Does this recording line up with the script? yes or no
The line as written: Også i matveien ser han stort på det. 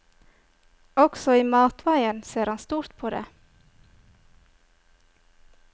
yes